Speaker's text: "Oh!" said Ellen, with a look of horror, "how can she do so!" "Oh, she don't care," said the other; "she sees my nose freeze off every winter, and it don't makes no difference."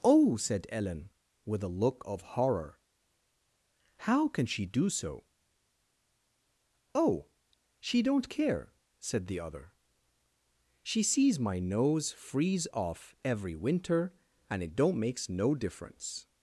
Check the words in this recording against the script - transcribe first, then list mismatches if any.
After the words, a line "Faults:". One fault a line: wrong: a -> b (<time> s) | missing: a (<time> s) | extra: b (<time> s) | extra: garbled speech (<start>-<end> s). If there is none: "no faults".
"Oh!" said Ellen, with a look of horror, "how can she do so!" "Oh, she don't care," said the other; "she sees my nose freeze off every winter, and it don't makes no difference."
Faults:
no faults